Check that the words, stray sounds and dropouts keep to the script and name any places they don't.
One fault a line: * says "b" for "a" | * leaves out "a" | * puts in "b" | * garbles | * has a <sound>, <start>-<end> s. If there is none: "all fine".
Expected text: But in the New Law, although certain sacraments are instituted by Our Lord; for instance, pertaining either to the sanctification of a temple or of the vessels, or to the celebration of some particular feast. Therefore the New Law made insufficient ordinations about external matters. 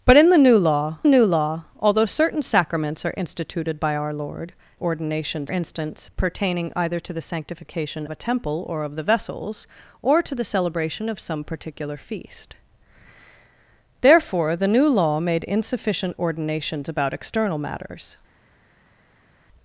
* puts in "New Law"
* says "ordinations" for "for"
* leaves out "of"